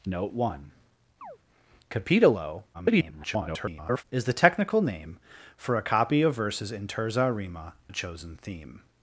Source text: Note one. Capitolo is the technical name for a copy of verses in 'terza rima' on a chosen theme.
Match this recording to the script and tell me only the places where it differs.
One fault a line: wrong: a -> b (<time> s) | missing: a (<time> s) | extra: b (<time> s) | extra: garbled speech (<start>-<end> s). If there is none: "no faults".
extra: garbled speech (2.7-4.0 s)
missing: on (7.7 s)